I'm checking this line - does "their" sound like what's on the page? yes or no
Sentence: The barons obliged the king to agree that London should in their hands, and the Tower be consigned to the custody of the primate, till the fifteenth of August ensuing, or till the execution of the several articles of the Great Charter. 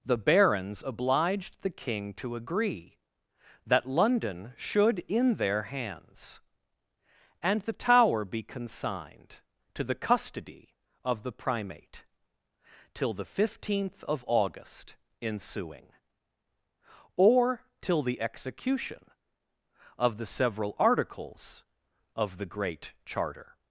yes